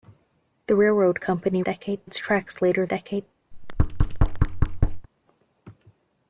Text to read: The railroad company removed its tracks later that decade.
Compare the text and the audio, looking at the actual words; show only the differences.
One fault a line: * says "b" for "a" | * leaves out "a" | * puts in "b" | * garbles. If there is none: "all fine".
* says "decade" for "removed"
* leaves out "that"